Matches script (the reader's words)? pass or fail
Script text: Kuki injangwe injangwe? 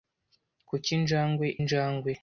pass